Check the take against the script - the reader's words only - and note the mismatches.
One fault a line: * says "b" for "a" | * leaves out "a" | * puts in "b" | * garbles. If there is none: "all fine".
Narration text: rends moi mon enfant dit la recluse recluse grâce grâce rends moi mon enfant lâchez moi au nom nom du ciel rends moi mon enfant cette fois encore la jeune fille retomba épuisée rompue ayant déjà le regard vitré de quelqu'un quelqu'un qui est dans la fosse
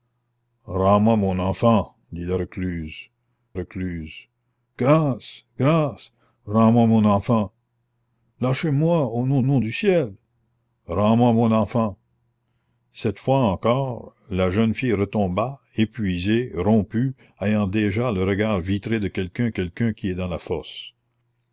all fine